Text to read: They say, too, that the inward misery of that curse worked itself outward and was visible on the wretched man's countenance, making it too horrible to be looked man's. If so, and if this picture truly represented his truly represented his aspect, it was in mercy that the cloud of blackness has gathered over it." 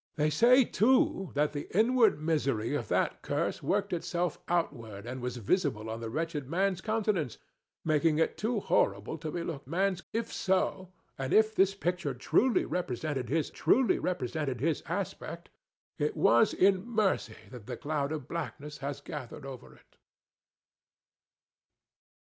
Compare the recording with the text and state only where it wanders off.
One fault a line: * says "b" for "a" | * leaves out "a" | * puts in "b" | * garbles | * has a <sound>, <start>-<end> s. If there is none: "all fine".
all fine